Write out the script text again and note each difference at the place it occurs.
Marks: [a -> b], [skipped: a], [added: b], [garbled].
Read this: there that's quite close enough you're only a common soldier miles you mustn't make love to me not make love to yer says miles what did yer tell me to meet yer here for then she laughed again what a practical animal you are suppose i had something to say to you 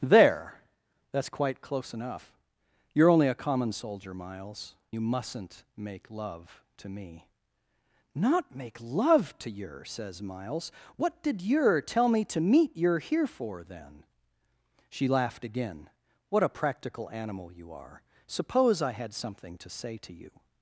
there that's quite close enough you're only a common soldier miles you mustn't make love to me not make love to yer says miles what did yer tell me to meet yer here for then she laughed again what a practical animal you are suppose i had something to say to you